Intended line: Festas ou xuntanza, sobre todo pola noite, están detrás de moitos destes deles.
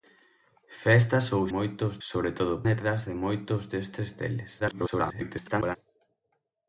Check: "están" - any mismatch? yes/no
yes